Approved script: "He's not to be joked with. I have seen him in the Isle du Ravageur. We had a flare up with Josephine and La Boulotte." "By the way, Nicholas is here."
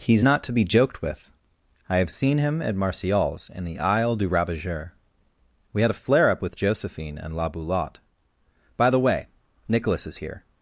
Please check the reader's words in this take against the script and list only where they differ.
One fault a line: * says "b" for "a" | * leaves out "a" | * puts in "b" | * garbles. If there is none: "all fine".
* puts in "at Martial's"